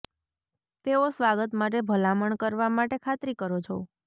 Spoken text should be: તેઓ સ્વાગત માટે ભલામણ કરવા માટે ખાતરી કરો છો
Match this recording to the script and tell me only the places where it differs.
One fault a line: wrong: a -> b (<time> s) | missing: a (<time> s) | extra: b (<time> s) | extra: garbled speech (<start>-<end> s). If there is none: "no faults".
no faults